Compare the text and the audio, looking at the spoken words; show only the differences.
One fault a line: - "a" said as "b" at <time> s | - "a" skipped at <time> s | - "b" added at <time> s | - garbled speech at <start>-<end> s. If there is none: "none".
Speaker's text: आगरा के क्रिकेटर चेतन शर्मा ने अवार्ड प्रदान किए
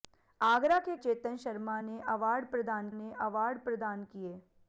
- "क्रिकेटर" skipped at 0.9 s
- "ने अवार्ड प्रदान" added at 2.9 s